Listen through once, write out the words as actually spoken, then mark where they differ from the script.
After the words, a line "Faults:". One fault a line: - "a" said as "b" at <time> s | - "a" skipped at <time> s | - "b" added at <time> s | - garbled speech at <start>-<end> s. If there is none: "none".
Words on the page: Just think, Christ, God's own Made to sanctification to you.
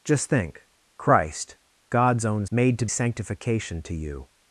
Just think, Christ, God's own Made to sanctification to you.
Faults:
none